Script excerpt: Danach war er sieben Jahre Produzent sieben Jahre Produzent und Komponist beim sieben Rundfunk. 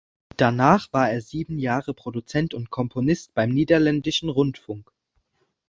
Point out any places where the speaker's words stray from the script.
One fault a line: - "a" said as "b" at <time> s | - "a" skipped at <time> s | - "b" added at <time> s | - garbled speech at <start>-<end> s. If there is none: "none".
- "sieben Jahre Produzent" skipped at 2.5 s
- "sieben" said as "niederländischen" at 3.5 s